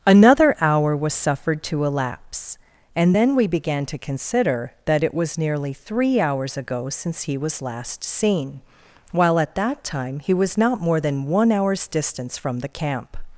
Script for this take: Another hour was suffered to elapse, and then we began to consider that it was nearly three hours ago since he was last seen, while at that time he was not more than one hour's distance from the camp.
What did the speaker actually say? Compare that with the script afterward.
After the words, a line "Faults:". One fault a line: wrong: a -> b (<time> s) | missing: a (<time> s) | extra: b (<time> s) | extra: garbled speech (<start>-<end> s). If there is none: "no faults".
Another hour was suffered to elapse, and then we began to consider that it was nearly three hours ago since he was last seen, while at that time he was not more than one hour's distance from the camp.
Faults:
no faults